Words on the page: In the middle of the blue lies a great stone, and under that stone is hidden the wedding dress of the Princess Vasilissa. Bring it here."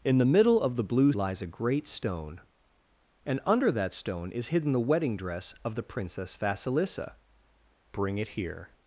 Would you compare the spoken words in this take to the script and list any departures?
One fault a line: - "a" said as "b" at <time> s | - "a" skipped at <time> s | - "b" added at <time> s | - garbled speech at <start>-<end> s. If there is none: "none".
none